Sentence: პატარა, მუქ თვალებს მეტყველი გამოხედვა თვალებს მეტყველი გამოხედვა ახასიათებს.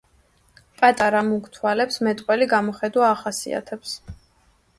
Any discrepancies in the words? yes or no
yes